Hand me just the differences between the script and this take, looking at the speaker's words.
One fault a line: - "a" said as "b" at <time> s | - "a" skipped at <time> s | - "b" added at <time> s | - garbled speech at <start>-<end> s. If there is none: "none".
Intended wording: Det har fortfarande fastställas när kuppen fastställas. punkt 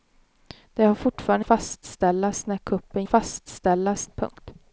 none